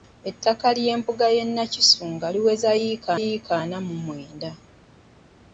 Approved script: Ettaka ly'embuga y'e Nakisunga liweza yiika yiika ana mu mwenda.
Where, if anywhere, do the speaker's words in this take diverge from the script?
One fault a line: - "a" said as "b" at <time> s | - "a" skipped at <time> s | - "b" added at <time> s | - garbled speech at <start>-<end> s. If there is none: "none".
none